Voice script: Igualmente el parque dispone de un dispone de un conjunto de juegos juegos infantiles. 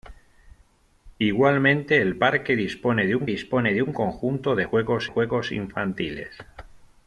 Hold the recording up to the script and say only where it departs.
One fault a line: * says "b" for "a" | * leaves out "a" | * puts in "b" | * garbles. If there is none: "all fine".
all fine